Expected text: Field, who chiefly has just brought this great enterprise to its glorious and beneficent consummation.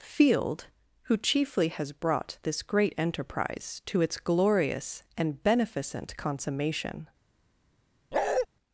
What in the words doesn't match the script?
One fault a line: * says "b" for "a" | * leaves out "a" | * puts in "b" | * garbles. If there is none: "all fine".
* leaves out "just"